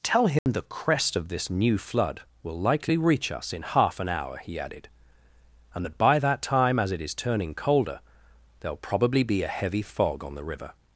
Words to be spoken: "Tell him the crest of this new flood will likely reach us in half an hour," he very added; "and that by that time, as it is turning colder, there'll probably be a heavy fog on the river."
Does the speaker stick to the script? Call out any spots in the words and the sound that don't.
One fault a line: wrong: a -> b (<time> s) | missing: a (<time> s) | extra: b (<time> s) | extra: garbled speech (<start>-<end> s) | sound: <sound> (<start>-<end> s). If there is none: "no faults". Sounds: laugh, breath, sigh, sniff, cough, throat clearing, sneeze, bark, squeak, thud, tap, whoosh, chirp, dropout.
sound: dropout (0.4-0.5 s)
missing: very (4.6 s)